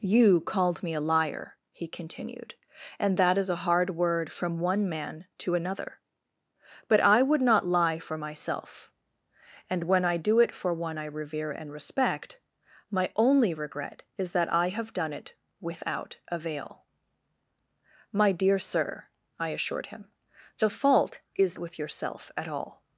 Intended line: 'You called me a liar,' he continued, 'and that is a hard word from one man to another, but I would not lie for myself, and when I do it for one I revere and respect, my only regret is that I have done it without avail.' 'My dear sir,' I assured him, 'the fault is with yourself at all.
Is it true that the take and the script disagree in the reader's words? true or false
false